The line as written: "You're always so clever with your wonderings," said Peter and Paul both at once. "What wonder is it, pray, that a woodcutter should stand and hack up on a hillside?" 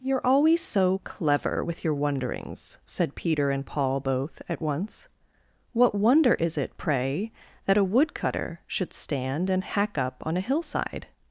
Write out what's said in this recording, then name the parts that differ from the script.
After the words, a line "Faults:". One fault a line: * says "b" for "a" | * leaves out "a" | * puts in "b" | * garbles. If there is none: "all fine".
"You're always so clever with your wonderings," said Peter and Paul both at once. "What wonder is it, pray, that a woodcutter should stand and hack up on a hillside?"
Faults:
all fine